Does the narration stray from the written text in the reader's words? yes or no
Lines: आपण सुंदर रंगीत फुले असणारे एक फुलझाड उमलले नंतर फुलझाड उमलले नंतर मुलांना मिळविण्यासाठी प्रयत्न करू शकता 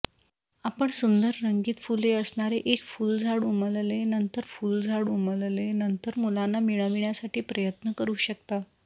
no